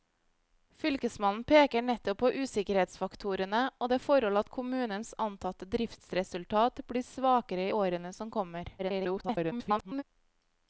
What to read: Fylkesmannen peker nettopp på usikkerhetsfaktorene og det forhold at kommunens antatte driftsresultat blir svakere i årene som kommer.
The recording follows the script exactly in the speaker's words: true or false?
false